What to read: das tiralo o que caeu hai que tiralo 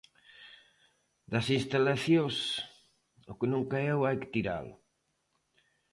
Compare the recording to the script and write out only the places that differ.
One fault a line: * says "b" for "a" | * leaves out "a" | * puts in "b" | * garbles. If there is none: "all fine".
* says "instalacións" for "tiralo"
* puts in "non"